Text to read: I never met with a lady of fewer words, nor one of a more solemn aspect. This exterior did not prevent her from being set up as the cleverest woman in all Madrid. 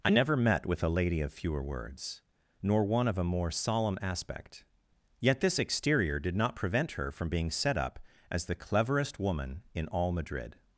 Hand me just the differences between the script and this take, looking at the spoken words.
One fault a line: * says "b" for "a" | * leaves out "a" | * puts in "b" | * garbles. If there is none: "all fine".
* puts in "Yet"